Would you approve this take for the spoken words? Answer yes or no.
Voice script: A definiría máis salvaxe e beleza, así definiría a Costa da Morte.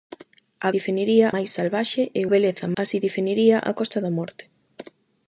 yes